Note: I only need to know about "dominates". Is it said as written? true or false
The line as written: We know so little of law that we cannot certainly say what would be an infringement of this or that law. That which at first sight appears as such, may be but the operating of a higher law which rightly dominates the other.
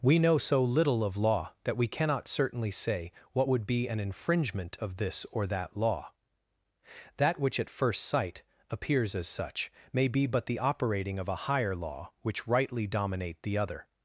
false